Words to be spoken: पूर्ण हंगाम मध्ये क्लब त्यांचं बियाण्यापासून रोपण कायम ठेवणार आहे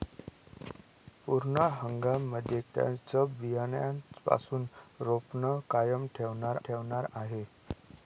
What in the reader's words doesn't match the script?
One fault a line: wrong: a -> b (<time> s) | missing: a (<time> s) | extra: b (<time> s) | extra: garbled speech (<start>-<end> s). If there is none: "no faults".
missing: क्लब (2.6 s)
extra: ठेवणार (6.6 s)